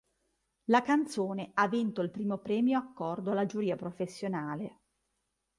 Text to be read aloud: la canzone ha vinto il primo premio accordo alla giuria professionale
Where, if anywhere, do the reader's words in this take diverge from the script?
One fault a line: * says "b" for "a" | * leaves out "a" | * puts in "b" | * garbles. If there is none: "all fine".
all fine